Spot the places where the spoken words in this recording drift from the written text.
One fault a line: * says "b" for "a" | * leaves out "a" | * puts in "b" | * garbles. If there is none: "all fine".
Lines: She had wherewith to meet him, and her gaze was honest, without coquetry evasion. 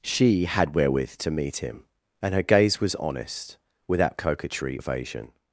all fine